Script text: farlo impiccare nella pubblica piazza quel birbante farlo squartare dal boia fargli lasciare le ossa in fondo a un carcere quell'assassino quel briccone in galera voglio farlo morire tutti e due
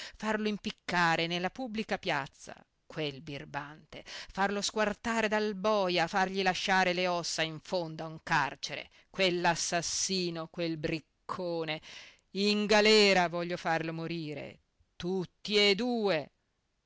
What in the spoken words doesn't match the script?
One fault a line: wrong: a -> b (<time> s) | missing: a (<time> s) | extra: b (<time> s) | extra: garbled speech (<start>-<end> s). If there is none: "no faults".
no faults